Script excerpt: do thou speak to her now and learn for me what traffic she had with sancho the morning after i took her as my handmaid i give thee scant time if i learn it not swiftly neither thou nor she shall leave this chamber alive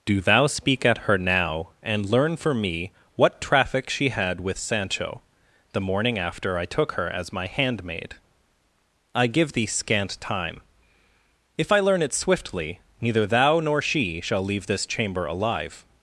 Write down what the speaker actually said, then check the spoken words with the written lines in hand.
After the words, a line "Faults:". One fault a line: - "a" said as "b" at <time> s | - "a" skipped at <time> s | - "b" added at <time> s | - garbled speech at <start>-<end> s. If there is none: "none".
do thou speak at her now and learn for me what traffic she had with sancho the morning after i took her as my handmaid i give thee scant time if i learn it swiftly neither thou nor she shall leave this chamber alive
Faults:
- "to" said as "at" at 0.8 s
- "not" skipped at 12.1 s